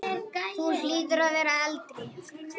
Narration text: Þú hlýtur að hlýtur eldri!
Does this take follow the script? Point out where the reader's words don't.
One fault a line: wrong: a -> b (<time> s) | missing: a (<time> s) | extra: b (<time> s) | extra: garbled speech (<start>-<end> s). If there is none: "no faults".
wrong: hlýtur -> vera (1.4 s)